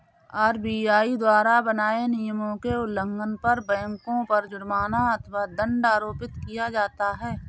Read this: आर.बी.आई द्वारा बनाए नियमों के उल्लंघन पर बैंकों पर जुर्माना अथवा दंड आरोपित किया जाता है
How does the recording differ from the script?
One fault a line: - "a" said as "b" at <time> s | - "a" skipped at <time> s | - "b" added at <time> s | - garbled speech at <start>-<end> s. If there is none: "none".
none